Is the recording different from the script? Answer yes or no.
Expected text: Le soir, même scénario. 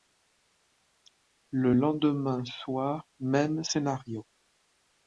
yes